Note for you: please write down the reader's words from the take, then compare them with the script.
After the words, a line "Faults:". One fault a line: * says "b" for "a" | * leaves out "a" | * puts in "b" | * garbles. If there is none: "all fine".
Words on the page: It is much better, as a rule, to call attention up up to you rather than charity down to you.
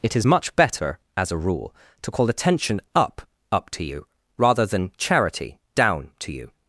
It is much better, as a rule, to call attention up up to you rather than charity down to you.
Faults:
all fine